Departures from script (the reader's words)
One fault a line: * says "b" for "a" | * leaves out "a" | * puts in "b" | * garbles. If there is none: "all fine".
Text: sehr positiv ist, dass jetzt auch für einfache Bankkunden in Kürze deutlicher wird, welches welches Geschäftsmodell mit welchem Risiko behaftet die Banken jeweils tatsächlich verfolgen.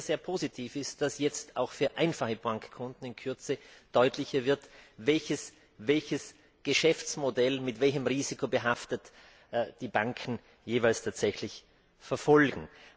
all fine